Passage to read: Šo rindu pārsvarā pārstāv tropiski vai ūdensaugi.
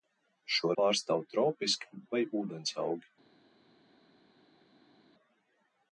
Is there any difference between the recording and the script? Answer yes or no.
yes